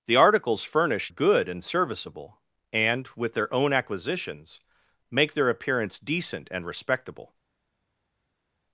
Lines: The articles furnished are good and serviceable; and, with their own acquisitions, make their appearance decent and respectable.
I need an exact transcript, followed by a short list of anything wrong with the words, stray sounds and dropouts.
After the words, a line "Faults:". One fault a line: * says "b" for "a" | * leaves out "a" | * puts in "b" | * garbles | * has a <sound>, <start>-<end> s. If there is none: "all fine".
The articles furnished good and serviceable; and, with their own acquisitions, make their appearance decent and respectable.
Faults:
* leaves out "are"